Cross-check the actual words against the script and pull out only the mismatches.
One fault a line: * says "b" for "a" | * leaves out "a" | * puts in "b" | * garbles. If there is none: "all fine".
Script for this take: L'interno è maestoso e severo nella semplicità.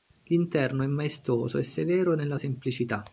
all fine